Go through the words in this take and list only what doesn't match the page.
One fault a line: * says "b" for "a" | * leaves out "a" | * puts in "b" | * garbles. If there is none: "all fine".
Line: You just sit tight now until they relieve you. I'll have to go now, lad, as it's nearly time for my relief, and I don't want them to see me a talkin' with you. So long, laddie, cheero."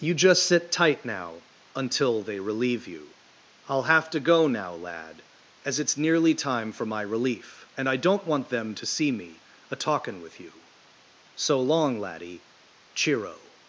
all fine